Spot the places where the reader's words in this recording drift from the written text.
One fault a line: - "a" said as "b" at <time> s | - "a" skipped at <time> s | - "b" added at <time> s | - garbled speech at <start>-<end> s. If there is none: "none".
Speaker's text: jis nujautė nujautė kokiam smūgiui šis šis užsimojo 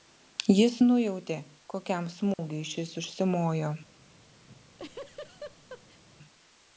- "nujautė" skipped at 1.4 s
- "šis" skipped at 3.0 s